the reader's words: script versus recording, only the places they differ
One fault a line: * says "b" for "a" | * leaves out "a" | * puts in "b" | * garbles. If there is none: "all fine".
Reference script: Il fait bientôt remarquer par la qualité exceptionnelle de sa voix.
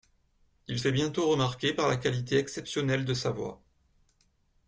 all fine